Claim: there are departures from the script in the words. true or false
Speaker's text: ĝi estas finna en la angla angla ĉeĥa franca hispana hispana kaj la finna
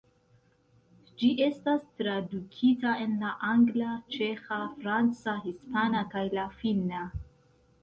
true